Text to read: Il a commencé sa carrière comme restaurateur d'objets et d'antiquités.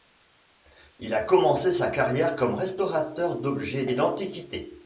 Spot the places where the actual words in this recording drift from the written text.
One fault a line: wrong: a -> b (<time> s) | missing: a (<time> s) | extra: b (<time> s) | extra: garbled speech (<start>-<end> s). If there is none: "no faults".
no faults